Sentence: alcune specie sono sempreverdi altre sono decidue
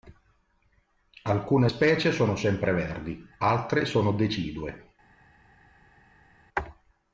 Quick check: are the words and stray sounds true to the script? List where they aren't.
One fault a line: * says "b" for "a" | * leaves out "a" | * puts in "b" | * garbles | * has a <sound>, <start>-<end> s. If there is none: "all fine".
all fine